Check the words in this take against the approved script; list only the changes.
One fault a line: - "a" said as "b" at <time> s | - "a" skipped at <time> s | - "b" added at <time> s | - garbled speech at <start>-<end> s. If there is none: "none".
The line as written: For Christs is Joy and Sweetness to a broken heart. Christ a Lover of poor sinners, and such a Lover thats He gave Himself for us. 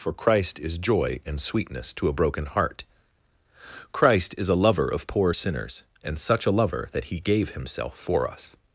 - "Christs" said as "Christ" at 0.1 s
- "is" added at 4.3 s
- "thats" said as "that" at 6.9 s